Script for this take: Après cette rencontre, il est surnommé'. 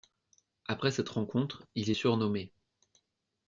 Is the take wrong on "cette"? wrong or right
right